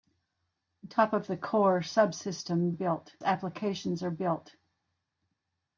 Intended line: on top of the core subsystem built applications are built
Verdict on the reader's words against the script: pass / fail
pass